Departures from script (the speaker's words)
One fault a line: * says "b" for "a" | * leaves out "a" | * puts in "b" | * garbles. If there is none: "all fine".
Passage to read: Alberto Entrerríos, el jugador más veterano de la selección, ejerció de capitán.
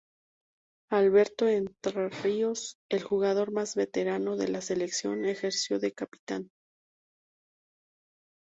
all fine